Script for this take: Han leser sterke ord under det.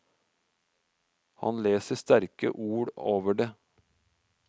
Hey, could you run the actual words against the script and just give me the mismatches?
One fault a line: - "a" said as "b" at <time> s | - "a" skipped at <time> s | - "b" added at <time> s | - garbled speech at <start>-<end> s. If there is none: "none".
- "under" said as "over" at 3.0 s